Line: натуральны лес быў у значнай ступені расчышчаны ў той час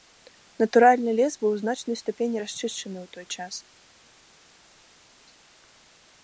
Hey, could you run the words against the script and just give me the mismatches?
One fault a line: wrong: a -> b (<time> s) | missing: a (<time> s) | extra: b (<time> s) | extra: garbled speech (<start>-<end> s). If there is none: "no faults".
no faults